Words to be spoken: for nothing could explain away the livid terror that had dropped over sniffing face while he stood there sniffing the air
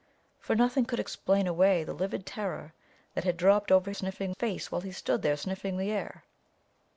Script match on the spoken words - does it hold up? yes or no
yes